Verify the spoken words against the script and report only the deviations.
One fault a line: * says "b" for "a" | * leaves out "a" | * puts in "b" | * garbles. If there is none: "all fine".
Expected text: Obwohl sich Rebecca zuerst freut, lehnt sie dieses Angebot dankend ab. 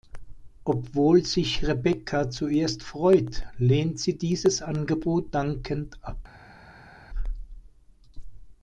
all fine